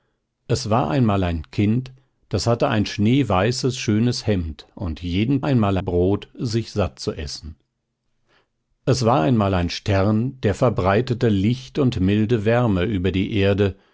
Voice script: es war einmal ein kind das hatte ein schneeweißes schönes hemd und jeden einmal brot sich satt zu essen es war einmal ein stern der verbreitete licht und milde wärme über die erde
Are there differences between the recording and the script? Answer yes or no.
no